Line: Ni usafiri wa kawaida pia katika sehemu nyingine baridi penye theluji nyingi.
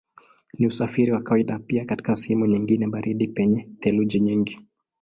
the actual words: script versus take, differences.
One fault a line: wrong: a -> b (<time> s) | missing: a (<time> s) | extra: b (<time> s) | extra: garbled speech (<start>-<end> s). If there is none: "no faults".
no faults